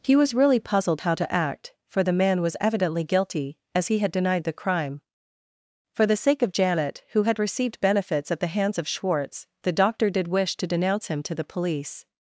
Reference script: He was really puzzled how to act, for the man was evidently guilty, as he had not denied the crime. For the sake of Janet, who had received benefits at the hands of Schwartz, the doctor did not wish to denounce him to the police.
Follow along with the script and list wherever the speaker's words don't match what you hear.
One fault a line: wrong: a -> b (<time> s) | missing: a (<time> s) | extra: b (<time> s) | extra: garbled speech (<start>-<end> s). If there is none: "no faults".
missing: not (4.1 s)
missing: not (10.3 s)